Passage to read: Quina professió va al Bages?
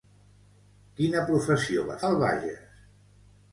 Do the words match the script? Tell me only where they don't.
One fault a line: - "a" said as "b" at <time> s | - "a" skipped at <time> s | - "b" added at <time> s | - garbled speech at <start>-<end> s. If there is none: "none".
none